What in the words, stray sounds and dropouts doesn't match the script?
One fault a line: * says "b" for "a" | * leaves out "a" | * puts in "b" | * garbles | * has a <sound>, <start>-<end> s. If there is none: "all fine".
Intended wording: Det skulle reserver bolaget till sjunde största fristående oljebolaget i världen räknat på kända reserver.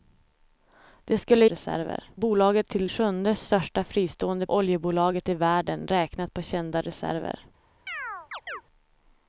* has a chirp, 7.9-8.6 s